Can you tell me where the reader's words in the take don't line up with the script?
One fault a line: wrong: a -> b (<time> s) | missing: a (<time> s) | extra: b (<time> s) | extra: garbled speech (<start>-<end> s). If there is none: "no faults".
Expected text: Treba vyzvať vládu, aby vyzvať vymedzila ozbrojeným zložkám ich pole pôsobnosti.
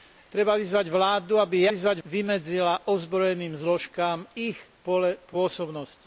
no faults